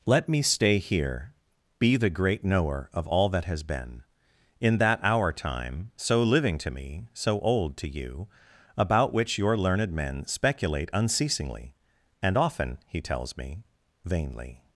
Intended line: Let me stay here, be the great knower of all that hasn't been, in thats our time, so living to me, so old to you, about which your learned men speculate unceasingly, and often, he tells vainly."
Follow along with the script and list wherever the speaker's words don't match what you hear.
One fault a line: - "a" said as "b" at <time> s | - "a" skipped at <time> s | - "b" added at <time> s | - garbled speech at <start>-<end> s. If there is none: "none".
- "hasn't" said as "has" at 3.5 s
- "thats" said as "that" at 4.8 s
- "me" added at 13.4 s